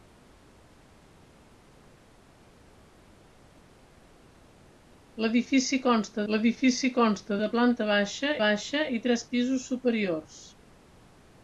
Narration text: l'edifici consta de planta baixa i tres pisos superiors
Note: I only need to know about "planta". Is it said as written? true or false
true